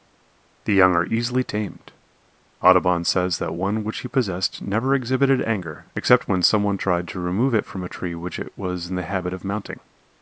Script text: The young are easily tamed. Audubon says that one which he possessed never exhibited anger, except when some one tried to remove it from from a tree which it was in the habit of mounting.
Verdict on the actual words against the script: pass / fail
fail